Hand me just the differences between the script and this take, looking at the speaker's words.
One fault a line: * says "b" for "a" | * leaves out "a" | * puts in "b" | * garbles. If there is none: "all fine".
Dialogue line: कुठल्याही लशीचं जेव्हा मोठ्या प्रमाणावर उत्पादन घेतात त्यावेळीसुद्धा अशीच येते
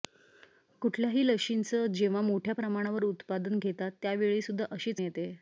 all fine